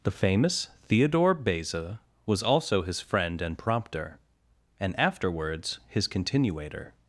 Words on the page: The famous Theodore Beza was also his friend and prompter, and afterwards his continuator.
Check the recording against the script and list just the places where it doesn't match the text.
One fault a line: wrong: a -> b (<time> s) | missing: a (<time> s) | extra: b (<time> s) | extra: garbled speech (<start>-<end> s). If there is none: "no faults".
no faults